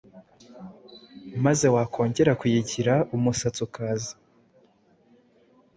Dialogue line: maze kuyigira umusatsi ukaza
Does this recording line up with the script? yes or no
no